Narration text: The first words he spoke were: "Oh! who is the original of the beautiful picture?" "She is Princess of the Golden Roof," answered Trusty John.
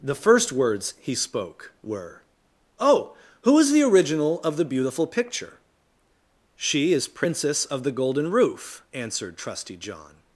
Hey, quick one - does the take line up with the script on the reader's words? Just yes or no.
yes